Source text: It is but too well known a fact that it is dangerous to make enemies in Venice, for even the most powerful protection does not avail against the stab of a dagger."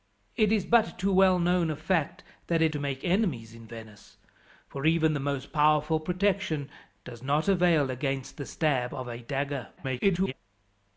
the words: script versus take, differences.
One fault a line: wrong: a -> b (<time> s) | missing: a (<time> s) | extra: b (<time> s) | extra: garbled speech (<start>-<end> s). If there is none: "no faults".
missing: is dangerous (2.7 s)
extra: garbled speech (9.8-10.3 s)